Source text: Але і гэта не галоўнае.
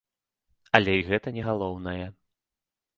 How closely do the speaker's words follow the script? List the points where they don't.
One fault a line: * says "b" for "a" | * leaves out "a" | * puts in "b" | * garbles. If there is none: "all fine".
all fine